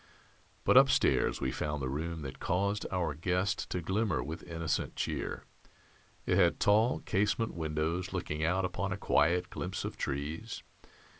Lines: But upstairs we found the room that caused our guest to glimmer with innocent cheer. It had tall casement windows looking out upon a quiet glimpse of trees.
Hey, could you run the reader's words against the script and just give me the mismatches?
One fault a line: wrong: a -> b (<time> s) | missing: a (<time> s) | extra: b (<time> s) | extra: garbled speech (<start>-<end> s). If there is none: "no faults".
no faults